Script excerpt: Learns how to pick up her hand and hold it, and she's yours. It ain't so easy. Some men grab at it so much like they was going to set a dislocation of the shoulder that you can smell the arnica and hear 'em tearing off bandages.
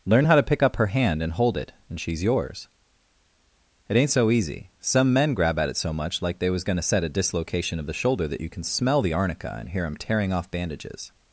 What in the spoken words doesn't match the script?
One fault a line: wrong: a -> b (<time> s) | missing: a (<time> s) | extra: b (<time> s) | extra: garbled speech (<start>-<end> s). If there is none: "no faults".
wrong: Learns -> Learn (0.1 s)